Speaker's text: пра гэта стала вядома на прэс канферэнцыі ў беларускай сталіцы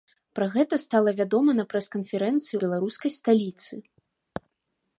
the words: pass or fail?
fail